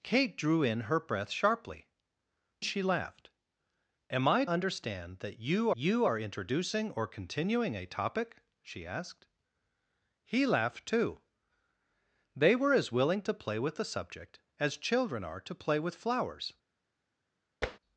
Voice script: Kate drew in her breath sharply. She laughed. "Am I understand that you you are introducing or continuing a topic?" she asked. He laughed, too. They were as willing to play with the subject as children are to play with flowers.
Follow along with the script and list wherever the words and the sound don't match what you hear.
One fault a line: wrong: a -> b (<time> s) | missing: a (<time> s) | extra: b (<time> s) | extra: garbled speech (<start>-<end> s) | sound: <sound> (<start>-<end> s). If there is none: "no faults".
sound: tap (17.6-17.8 s)